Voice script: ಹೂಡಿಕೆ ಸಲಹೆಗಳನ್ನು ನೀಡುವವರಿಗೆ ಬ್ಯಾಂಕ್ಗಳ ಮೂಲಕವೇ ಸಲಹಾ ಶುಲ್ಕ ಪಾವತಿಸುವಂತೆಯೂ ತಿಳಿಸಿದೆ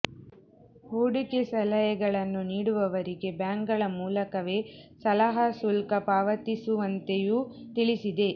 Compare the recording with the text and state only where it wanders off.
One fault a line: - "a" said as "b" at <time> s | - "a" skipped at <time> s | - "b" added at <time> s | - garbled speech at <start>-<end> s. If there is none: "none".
none